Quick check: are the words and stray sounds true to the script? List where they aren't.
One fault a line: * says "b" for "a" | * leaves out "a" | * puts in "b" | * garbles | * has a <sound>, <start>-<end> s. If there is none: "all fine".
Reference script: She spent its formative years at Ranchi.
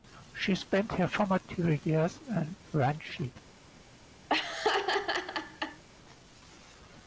* says "her" for "its"
* says "in" for "at"
* has a laugh, 4.3-5.8 s